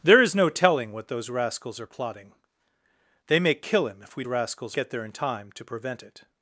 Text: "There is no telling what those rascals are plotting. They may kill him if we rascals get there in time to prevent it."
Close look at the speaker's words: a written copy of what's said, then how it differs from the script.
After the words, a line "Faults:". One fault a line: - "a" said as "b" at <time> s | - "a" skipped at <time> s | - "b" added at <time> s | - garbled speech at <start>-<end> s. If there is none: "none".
"There is no telling what those rascals are plotting. They may kill him if we rascals get there in time to prevent it."
Faults:
none